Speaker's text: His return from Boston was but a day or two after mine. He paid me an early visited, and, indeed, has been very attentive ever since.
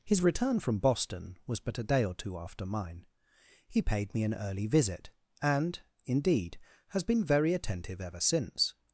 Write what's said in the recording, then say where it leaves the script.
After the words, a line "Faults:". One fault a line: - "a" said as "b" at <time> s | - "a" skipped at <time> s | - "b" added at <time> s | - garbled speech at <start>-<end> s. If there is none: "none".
His return from Boston was but a day or two after mine. He paid me an early visit, and, indeed, has been very attentive ever since.
Faults:
- "visited" said as "visit" at 4.7 s